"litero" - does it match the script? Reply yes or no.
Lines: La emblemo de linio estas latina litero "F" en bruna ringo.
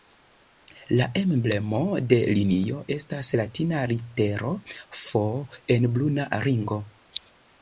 yes